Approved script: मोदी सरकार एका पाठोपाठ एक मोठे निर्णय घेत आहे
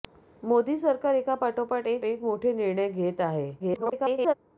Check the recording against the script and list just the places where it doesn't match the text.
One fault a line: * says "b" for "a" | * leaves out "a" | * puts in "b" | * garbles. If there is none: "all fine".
* puts in "एक"
* garbles